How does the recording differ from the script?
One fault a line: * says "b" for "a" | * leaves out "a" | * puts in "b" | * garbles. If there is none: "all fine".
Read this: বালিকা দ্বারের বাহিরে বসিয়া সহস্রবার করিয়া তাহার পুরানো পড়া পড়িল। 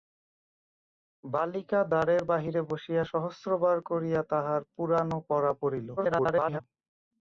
* garbles